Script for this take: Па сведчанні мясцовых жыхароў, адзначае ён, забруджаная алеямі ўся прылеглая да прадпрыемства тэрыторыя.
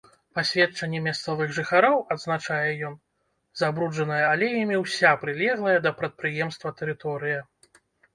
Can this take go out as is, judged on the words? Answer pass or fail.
pass